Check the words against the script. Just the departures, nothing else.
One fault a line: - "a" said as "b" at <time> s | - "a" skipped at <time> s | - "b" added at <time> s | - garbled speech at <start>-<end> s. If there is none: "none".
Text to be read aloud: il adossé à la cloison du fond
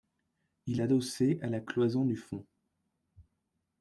none